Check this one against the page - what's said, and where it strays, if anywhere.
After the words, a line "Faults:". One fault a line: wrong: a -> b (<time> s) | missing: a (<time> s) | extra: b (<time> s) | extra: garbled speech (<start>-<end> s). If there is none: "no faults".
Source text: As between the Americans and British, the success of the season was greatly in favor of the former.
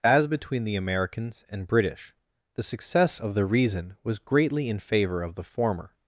As between the Americans and British, the success of the reason was greatly in favor of the former.
Faults:
wrong: season -> reason (3.4 s)